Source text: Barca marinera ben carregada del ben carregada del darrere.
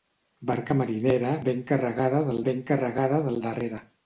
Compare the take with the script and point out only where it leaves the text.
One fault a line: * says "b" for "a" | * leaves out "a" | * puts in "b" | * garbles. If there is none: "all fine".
all fine